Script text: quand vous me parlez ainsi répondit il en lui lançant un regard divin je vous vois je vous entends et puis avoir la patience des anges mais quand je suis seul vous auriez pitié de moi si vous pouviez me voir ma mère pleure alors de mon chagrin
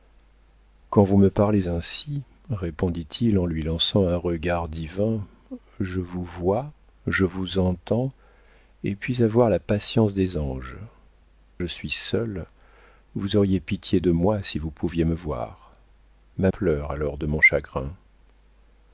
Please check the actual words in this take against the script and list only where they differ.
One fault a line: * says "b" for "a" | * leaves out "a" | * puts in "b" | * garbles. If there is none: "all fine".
* leaves out "mais quand"
* leaves out "mère"